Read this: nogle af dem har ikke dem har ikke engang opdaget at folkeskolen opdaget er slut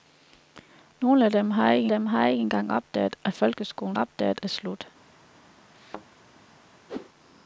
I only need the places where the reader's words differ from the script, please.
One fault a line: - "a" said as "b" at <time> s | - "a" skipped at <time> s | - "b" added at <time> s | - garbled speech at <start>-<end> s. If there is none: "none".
none